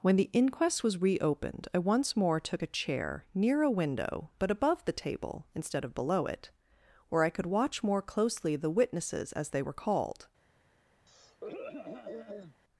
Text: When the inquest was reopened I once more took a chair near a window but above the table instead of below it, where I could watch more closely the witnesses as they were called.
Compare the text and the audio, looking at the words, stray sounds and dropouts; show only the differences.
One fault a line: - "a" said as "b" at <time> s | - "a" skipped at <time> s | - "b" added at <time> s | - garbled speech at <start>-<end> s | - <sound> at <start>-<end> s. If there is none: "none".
- throat clearing at 11.1-12.6 s